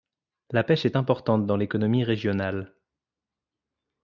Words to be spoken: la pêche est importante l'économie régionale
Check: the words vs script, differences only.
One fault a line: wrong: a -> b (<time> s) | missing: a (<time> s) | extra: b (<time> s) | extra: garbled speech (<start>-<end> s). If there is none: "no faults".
extra: dans (1.5 s)